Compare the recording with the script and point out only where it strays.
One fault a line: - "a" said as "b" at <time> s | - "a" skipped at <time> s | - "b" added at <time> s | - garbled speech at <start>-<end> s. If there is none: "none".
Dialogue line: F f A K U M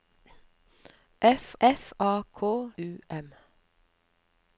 none